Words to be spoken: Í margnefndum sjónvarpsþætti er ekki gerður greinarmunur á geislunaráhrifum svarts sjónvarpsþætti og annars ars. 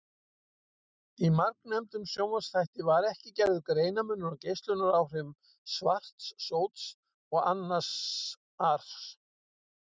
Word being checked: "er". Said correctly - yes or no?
no